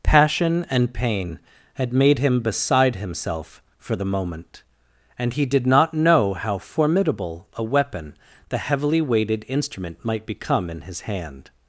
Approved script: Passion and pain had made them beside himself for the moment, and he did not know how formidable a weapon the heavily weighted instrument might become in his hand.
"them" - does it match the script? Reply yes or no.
no